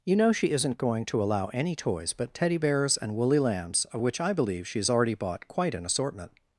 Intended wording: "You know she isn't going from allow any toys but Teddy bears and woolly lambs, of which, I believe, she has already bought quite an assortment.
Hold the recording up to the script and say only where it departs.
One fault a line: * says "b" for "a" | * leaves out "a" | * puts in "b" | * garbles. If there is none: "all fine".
* says "to" for "from"